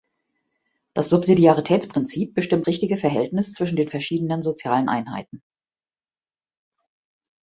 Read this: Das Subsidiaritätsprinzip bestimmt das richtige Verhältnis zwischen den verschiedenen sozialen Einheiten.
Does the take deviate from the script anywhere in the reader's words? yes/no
yes